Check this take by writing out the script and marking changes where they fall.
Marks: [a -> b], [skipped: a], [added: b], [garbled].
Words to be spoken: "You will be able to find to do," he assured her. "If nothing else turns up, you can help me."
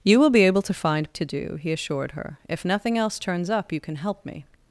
"You will be able to find to do," he assured her. "If nothing else turns up, you can help me."